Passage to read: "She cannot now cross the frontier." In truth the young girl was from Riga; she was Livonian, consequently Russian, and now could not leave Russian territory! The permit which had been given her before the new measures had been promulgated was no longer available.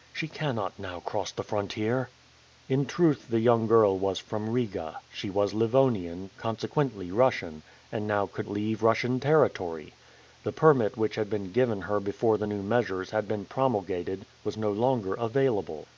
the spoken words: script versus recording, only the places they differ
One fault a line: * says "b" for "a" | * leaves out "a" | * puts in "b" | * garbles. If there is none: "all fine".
* leaves out "not"